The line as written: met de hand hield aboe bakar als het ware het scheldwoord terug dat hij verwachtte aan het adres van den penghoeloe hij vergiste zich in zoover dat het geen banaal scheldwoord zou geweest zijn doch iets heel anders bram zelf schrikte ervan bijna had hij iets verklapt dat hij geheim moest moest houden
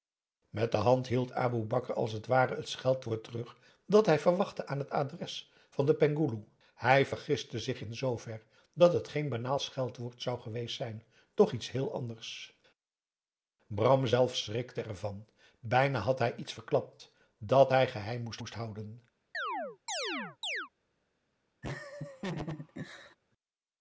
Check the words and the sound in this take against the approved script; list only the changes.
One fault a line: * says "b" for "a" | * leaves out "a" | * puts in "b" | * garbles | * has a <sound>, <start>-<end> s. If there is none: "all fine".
* has a chirp, 19.3-20.7 s
* has a laugh, 21.6-23.2 s